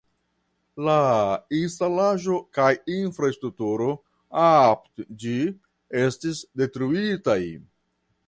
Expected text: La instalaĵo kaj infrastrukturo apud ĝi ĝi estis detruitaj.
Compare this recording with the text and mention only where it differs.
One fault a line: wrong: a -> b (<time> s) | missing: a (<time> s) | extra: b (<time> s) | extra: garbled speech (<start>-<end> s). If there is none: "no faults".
missing: ĝi (5.4 s)